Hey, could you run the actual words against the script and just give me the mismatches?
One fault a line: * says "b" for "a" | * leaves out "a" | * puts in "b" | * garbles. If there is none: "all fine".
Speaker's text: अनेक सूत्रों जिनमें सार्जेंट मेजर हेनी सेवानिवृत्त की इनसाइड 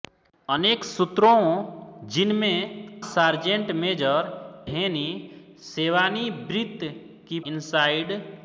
all fine